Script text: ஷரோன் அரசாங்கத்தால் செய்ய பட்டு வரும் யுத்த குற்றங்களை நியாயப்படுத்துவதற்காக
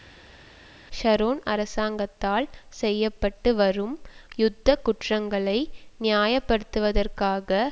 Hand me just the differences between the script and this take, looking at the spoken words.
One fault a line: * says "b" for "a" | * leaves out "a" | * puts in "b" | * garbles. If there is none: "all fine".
all fine